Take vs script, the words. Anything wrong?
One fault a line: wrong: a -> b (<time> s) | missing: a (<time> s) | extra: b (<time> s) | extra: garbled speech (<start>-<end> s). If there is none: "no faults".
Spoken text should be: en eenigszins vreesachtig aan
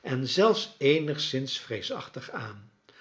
extra: zelfs (0.3 s)